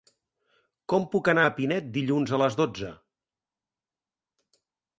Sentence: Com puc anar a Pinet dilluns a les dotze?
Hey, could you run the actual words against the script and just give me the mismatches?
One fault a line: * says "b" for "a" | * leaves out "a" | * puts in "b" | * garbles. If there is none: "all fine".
all fine